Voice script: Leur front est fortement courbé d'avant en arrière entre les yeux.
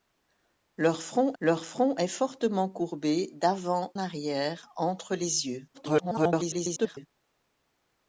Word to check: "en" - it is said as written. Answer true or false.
false